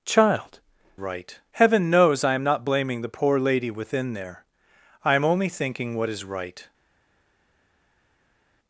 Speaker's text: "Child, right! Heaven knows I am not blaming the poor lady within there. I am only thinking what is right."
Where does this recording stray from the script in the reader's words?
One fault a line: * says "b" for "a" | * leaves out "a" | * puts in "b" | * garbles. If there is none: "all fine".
all fine